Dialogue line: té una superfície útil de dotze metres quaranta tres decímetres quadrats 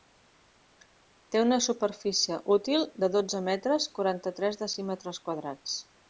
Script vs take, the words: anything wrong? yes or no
no